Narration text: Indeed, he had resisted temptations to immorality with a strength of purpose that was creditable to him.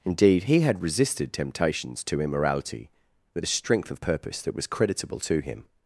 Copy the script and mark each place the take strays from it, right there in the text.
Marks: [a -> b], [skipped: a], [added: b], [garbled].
Indeed, he had resisted temptations to immorality with a strength of purpose that was creditable to him.